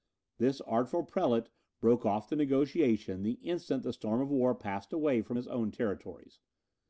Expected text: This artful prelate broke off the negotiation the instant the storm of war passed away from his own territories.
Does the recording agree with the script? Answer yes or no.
yes